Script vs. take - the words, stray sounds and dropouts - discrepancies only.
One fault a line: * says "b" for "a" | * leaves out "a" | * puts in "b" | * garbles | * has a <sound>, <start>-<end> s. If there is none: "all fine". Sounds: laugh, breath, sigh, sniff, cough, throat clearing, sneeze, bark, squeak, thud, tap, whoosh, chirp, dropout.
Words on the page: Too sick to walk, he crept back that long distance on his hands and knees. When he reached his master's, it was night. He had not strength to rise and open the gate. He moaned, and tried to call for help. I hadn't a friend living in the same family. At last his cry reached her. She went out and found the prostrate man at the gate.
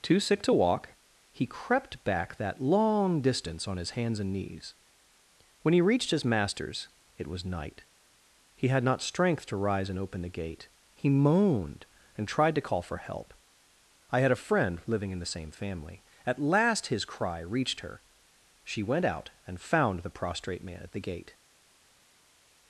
* says "had" for "hadn't"